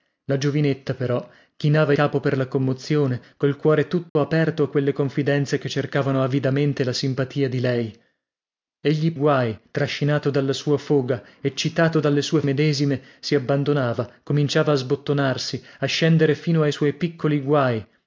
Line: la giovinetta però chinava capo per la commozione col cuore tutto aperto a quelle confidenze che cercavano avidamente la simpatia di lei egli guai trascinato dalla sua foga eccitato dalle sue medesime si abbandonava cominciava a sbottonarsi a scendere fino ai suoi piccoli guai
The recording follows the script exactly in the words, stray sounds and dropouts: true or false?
false